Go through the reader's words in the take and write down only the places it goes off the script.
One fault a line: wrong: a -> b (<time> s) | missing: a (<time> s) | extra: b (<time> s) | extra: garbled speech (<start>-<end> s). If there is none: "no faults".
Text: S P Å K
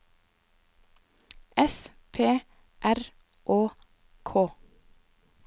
extra: R (2.8 s)